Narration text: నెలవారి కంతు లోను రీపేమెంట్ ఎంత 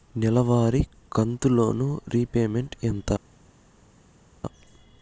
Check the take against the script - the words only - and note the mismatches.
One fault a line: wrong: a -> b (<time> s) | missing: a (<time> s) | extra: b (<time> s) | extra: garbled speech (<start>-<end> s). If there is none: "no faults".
no faults